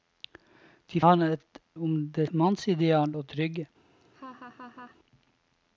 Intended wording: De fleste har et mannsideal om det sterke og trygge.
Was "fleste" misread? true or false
true